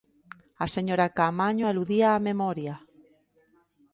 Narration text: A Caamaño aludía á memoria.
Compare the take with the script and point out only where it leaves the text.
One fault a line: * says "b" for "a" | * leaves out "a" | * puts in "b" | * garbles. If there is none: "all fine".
* puts in "señora"